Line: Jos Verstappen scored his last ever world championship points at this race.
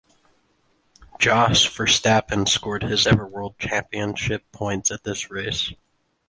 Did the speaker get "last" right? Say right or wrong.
wrong